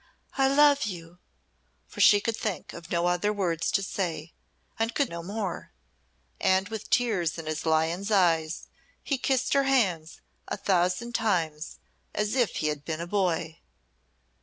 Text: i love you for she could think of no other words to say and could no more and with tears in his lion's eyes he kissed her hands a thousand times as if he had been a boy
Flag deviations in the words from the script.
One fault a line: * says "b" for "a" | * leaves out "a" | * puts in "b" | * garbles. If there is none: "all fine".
all fine